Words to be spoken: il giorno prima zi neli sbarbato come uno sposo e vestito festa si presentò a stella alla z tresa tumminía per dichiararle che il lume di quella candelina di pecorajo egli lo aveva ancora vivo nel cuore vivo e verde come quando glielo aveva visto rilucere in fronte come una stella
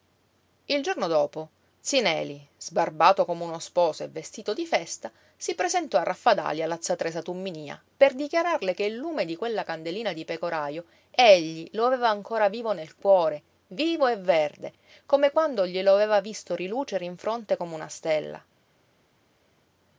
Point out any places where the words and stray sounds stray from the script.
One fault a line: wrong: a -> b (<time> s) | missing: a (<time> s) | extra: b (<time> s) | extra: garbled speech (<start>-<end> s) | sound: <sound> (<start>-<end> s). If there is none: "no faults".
wrong: prima -> dopo (1.1 s)
extra: di (4.5 s)
wrong: stella -> raffadali (6.0 s)